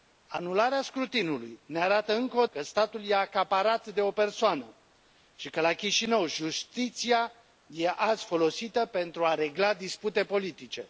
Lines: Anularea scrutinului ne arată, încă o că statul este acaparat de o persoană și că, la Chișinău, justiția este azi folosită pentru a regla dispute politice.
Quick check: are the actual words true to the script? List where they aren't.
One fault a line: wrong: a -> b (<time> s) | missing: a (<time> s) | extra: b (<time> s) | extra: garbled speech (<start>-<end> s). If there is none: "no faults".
no faults